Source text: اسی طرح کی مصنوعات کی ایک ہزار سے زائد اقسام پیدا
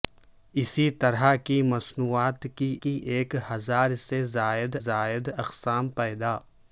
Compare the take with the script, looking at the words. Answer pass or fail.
fail